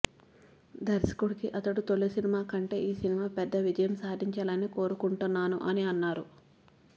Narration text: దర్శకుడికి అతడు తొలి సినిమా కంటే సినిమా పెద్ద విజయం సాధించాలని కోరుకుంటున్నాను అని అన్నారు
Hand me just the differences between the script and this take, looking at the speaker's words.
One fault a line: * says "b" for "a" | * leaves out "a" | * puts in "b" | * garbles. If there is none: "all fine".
* puts in "ఈ"